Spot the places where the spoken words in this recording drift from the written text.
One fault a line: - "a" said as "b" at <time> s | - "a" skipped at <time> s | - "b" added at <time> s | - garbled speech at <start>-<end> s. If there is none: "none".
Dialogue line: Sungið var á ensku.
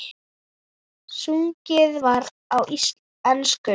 none